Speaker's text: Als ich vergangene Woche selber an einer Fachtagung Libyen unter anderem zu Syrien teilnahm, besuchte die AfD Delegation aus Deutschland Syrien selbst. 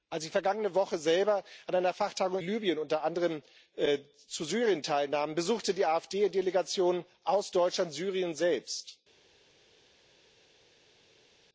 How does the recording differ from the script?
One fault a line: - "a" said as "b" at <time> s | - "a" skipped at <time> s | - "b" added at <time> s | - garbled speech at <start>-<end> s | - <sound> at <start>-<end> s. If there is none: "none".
none